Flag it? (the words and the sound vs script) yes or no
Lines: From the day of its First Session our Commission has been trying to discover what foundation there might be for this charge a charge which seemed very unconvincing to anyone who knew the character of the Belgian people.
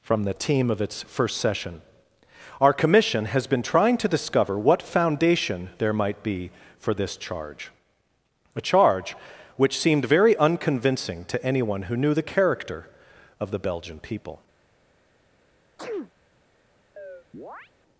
yes